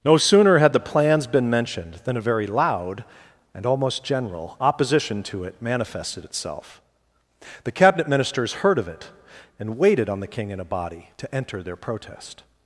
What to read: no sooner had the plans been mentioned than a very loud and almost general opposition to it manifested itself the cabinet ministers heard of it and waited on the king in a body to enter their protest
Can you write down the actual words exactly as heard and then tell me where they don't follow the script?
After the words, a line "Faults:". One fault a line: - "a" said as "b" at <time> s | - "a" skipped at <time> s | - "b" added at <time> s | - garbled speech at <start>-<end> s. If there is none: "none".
no sooner had the plans been mentioned than a very loud and almost general opposition to it manifested itself the cabinet ministers heard of it and waited on the king in a body to enter their protest
Faults:
none